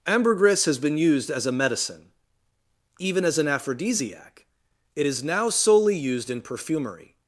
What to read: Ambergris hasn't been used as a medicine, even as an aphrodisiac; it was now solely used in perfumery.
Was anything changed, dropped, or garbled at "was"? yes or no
yes